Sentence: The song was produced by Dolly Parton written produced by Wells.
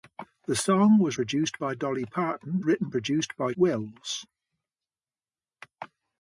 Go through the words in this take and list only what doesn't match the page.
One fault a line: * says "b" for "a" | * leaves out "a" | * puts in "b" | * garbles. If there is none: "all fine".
all fine